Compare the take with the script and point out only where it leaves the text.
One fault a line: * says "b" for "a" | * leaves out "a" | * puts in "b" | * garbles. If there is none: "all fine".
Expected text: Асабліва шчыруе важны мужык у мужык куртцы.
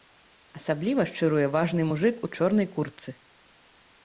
* says "чорнай" for "мужык"